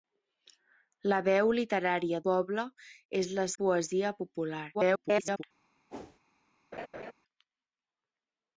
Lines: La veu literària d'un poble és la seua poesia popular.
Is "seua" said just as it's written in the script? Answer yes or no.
no